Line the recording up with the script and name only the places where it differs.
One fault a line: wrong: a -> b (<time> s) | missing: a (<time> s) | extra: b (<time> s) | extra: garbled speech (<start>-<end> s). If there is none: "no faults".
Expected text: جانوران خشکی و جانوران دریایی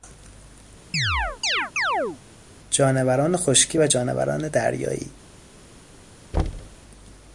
no faults